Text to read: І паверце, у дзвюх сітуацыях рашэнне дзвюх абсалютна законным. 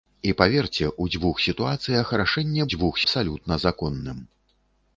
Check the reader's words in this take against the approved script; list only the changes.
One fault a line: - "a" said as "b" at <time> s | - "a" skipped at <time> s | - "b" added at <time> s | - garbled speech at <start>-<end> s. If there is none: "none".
none